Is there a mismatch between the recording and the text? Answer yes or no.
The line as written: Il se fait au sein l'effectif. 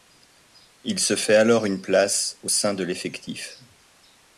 yes